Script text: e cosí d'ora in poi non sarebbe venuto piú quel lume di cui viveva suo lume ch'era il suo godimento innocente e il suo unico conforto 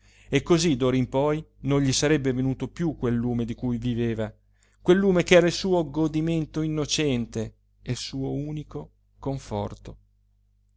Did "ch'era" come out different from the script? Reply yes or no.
no